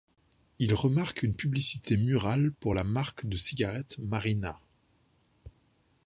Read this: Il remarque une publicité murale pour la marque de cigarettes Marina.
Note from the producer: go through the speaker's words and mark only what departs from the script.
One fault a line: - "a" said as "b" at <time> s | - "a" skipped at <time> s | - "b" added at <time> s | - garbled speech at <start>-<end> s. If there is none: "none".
none